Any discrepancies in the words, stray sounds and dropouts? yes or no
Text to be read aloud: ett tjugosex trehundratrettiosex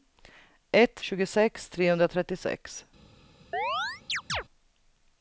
yes